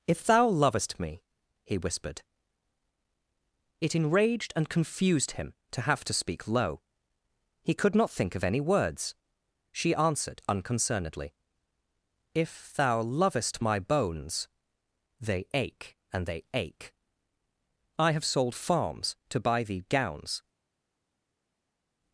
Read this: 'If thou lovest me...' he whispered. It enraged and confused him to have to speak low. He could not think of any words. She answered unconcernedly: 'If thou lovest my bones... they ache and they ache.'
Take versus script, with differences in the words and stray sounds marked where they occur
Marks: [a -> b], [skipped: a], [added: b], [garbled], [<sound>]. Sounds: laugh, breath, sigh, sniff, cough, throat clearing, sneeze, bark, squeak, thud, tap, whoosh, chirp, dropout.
'If thou lovest me...' he whispered. It enraged and confused him to have to speak low. He could not think of any words. She answered unconcernedly: 'If thou lovest my bones... they ache and they ache.' [added: I have sold farms to buy thee gowns]